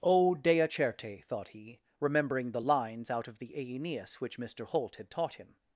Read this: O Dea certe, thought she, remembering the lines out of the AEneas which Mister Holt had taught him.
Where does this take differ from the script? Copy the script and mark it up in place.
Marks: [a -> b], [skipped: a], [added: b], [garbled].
O Dea certe, thought [she, -> he] remembering the lines out of the AEneas which Mister Holt had taught him.